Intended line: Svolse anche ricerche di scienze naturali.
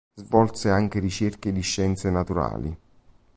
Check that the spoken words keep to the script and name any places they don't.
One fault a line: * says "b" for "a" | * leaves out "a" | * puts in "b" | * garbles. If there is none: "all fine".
all fine